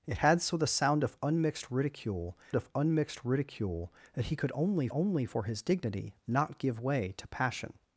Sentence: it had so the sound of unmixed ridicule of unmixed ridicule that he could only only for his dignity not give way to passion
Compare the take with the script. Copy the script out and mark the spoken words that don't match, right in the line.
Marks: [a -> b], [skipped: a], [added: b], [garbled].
it had so the sound of unmixed ridicule of unmixed ridicule that he could only only for his dignity not give way to passion